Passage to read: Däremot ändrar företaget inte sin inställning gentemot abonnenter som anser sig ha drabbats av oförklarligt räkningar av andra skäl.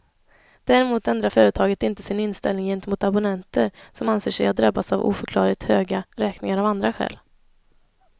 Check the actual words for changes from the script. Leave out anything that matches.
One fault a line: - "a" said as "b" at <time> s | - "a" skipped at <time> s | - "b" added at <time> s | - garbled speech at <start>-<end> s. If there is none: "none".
- "höga" added at 5.6 s